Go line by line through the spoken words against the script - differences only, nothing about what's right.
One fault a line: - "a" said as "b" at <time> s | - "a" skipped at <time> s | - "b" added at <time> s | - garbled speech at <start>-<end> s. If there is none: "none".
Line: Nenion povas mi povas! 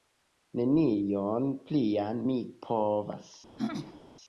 - "povas" said as "plian" at 1.7 s